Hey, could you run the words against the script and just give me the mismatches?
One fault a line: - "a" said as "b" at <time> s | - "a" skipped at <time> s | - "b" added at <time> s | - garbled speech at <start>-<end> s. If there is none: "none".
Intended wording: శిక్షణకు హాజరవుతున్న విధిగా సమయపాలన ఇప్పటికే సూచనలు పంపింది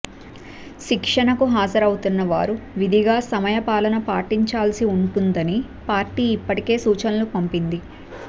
- "వారు" added at 2.2 s
- "పాటించాల్సి ఉంటుందని పార్టీ" added at 4.1 s